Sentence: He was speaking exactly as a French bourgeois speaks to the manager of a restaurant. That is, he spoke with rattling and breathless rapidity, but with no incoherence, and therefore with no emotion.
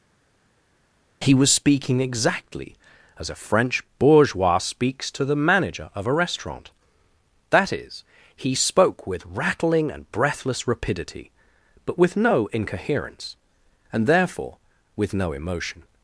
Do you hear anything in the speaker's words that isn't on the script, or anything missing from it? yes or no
no